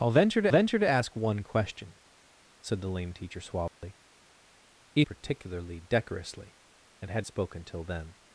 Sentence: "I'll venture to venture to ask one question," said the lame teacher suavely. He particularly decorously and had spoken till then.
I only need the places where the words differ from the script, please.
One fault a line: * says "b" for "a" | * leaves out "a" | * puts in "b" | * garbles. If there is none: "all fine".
all fine